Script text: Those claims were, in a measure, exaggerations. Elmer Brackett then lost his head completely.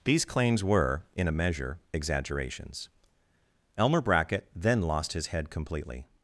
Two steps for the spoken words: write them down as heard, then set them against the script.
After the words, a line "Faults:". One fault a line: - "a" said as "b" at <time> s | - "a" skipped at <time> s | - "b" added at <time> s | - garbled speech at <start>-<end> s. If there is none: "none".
These claims were, in a measure, exaggerations. Elmer Brackett then lost his head completely.
Faults:
- "Those" said as "These" at 0.0 s